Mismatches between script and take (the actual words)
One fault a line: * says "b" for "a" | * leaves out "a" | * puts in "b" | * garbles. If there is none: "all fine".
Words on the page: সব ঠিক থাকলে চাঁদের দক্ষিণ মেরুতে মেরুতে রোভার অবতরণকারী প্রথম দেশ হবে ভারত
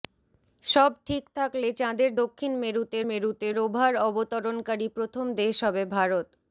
all fine